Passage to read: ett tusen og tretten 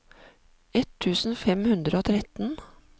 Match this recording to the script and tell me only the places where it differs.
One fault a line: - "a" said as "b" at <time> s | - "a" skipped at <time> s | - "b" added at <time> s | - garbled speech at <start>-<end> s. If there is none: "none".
- "fem hundre" added at 1.4 s